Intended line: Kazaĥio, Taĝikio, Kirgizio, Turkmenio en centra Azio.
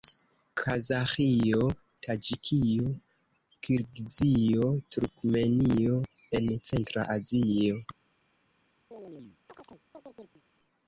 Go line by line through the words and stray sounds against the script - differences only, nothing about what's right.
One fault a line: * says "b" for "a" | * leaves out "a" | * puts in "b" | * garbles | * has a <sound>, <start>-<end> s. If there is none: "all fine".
* has a chirp, 8.9-10.4 s